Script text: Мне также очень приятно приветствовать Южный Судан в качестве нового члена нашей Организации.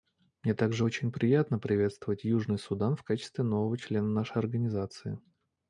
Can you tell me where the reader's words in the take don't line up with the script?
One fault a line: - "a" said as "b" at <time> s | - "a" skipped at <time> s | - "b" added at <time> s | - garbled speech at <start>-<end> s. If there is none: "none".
none